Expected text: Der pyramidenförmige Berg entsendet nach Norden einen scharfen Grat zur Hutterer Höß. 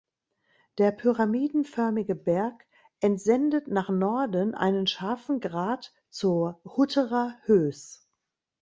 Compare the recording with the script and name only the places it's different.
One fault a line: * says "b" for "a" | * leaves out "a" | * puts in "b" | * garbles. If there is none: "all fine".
all fine